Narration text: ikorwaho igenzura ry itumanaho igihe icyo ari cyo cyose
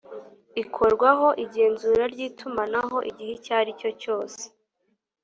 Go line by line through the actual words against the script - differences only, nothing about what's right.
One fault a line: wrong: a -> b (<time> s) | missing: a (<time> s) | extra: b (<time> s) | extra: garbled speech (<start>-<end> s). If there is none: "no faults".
no faults